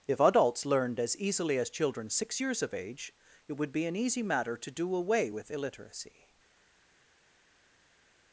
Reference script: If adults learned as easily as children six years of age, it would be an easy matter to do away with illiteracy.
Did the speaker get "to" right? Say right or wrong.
right